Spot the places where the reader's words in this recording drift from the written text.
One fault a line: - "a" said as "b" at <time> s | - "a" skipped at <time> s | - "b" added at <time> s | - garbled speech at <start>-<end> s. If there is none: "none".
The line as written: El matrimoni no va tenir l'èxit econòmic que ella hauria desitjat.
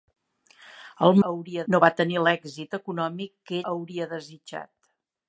- "matrimoni" said as "hauria" at 1.3 s
- "ella" skipped at 3.6 s